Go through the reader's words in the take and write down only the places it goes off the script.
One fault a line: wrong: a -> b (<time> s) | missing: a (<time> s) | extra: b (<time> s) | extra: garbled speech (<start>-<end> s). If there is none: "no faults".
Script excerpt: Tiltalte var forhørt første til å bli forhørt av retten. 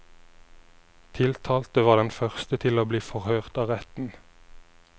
wrong: forhørt -> den (2.0 s)